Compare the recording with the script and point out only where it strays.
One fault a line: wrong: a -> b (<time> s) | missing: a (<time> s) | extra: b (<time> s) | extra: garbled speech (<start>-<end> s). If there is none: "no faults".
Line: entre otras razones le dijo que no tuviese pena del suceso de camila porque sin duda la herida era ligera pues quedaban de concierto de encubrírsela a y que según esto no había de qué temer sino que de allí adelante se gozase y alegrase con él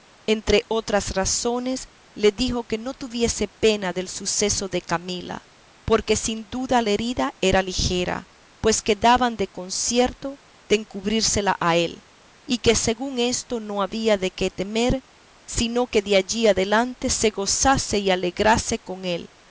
extra: él (11.8 s)